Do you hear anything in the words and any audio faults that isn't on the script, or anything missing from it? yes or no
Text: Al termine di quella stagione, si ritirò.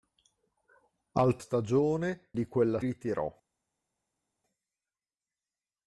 yes